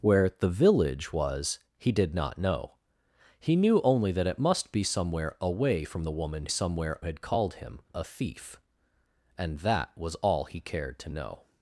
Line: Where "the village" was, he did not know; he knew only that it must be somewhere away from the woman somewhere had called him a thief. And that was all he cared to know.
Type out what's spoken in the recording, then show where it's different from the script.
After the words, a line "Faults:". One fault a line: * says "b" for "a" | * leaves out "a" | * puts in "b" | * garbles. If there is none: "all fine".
Where "the village" was, he did not know; he knew only that it must be somewhere away from the woman somewhere had called him a thief. And that was all he cared to know.
Faults:
all fine